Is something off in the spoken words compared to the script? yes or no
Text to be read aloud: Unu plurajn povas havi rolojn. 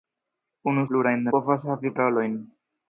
no